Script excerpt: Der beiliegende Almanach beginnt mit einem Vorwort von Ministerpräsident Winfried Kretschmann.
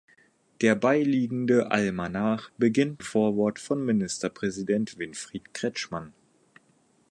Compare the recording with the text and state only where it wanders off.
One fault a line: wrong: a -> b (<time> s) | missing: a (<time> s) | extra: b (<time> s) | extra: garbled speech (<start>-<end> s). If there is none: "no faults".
missing: mit einem (3.0 s)